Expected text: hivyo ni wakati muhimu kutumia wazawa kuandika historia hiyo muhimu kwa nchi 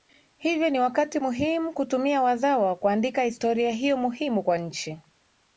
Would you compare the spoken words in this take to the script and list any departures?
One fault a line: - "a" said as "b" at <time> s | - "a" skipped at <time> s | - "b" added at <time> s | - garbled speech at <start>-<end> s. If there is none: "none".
none